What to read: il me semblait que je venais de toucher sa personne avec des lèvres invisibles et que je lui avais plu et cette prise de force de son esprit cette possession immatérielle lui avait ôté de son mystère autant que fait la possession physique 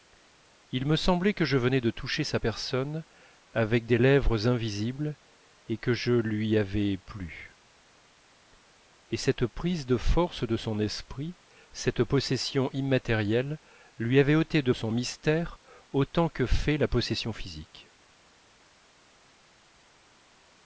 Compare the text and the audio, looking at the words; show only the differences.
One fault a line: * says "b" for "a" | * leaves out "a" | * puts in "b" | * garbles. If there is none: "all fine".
all fine